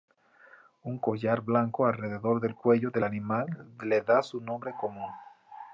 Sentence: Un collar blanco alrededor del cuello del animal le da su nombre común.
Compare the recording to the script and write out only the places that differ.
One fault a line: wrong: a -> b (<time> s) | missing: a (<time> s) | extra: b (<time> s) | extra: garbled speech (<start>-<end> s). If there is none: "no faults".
no faults